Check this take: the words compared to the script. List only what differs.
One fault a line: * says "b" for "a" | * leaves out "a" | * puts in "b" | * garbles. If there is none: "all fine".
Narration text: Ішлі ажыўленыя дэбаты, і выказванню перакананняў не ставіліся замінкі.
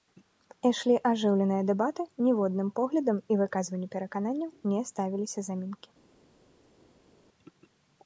* puts in "ніводным поглядам"